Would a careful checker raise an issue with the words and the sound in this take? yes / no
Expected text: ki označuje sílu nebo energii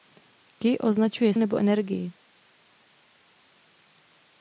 yes